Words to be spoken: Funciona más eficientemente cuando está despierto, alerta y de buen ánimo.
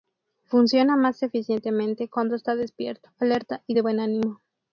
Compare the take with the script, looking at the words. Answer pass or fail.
pass